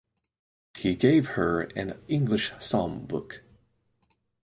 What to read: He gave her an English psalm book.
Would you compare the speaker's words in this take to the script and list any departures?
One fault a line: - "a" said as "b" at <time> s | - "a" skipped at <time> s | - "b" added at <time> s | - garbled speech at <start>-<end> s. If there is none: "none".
none